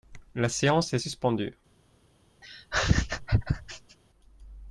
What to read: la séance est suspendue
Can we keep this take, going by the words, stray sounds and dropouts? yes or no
no